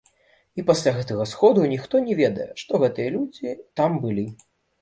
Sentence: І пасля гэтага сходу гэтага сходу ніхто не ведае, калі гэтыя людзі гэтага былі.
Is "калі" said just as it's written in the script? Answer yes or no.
no